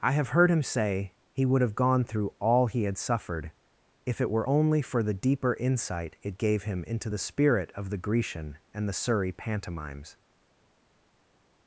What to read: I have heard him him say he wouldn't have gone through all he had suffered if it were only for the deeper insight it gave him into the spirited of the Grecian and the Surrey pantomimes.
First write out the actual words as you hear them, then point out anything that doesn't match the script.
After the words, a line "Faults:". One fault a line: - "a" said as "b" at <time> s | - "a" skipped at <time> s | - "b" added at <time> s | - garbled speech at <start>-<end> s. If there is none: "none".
I have heard him say he would have gone through all he had suffered if it were only for the deeper insight it gave him into the spirit of the Grecian and the Surrey pantomimes.
Faults:
- "him" skipped at 0.6 s
- "wouldn't" said as "would" at 1.4 s
- "spirited" said as "spirit" at 7.2 s